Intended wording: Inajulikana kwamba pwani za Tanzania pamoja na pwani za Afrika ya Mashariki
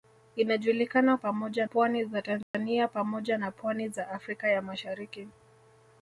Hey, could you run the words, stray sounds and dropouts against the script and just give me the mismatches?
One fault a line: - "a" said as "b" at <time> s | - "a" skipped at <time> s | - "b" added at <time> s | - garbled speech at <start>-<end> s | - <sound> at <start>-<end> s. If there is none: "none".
- "kwamba" said as "pamoja" at 1.2 s
- dropout at 2.4-2.5 s